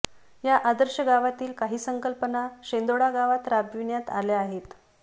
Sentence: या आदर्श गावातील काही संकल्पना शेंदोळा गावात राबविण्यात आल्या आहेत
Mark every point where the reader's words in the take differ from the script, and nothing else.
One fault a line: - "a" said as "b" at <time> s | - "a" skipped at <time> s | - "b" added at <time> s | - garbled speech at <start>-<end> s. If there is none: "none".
none